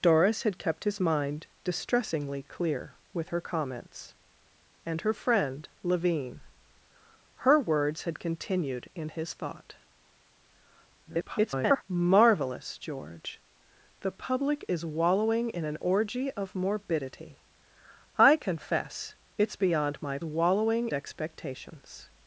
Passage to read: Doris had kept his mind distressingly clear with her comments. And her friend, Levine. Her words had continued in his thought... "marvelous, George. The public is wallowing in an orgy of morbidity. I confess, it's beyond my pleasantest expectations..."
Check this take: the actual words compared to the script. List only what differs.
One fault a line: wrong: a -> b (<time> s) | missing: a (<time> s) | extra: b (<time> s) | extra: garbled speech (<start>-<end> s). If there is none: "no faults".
extra: garbled speech (11.0-11.8 s)
wrong: pleasantest -> wallowing (20.2 s)